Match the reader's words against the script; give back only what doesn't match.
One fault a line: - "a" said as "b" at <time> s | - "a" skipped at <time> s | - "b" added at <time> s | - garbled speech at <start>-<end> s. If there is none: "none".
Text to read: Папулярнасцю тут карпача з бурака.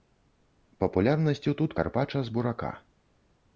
none